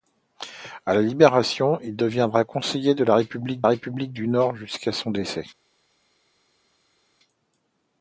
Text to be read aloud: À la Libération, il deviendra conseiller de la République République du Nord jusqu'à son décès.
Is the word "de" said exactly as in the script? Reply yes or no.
yes